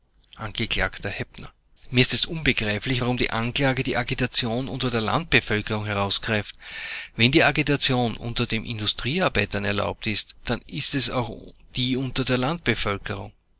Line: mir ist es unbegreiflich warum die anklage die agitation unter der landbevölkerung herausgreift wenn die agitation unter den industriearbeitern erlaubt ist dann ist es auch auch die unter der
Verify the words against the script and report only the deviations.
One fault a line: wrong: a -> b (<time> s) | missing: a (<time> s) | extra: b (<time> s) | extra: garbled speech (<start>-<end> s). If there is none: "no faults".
missing: auch (11.3 s)